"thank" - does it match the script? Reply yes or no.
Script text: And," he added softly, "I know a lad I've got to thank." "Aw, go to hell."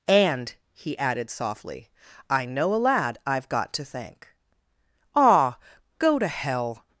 yes